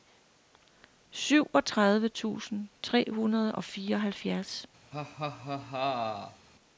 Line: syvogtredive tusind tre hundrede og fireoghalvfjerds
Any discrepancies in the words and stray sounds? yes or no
yes